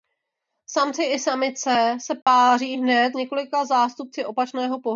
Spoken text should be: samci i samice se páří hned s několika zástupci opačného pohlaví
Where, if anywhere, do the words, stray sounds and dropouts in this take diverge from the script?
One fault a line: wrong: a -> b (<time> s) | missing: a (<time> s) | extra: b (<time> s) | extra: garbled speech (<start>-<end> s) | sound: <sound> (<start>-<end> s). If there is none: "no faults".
sound: dropout (2.2-2.3 s)
missing: s (3.2 s)